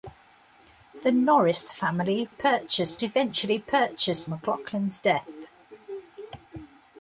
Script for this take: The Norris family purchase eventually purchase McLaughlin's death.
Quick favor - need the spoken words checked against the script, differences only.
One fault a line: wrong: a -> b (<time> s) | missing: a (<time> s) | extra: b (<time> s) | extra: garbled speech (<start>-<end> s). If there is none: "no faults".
no faults